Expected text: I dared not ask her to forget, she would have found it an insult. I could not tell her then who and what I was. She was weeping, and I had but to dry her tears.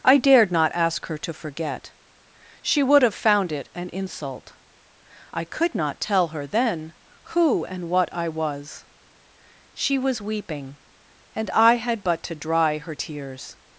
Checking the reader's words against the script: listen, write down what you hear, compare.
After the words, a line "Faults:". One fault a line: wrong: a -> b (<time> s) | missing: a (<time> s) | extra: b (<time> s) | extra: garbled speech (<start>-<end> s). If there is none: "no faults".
I dared not ask her to forget, she would have found it an insult. I could not tell her then who and what I was. She was weeping, and I had but to dry her tears.
Faults:
no faults